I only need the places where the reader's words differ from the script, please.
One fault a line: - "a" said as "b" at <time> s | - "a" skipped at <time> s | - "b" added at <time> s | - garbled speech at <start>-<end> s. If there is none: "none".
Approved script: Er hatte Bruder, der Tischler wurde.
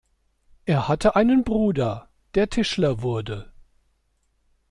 - "einen" added at 1.1 s